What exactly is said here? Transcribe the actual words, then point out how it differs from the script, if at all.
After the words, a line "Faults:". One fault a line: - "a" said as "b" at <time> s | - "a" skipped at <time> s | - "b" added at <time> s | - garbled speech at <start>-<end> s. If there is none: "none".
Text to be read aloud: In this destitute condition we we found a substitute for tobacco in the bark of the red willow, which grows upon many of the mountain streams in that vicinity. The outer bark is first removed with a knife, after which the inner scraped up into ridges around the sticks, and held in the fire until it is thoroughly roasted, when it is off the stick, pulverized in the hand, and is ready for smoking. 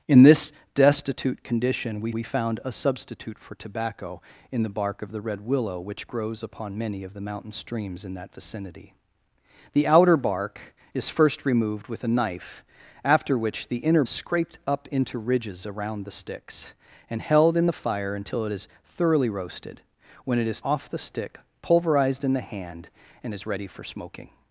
In this destitute condition we we found a substitute for tobacco in the bark of the red willow, which grows upon many of the mountain streams in that vicinity. The outer bark is first removed with a knife, after which the inner scraped up into ridges around the sticks, and held in the fire until it is thoroughly roasted, when it is off the stick, pulverized in the hand, and is ready for smoking.
Faults:
none